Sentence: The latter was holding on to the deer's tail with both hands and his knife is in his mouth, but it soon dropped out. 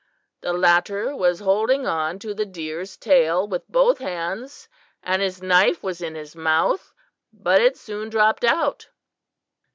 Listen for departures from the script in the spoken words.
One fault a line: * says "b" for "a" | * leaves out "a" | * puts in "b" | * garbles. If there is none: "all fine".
* says "was" for "is"